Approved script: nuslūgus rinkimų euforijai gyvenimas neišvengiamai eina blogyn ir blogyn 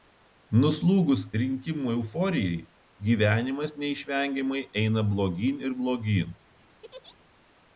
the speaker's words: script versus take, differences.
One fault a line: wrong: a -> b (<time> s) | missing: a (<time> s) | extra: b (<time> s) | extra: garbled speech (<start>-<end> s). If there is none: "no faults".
no faults